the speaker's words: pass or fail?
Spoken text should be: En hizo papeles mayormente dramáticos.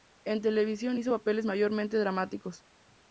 fail